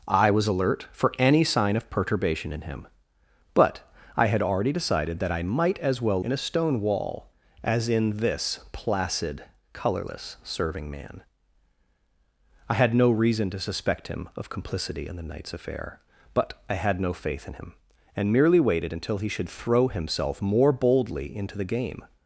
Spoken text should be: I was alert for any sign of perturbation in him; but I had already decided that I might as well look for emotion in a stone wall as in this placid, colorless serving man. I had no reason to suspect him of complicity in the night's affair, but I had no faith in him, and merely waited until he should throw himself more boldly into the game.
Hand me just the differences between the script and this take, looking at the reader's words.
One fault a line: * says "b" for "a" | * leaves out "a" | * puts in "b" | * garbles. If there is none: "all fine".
* leaves out "look for emotion"